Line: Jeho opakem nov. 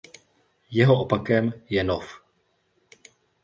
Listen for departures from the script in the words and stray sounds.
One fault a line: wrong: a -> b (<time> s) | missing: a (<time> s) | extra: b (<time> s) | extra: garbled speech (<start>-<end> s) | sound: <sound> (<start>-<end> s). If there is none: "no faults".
extra: je (1.7 s)